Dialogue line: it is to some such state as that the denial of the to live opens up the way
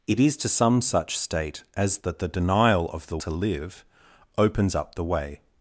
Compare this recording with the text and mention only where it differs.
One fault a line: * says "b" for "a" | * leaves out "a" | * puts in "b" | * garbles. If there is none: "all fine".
all fine